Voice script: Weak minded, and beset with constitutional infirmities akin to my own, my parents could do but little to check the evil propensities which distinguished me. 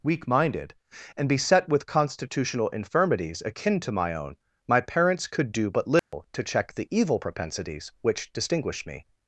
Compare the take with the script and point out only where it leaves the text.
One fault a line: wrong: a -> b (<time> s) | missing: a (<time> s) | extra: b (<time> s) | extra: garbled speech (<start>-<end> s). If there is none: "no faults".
no faults